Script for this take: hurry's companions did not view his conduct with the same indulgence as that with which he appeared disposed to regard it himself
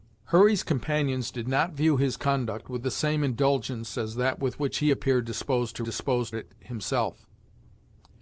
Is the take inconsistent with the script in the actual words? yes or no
yes